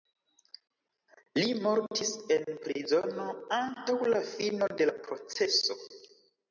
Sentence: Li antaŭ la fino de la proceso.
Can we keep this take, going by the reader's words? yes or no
no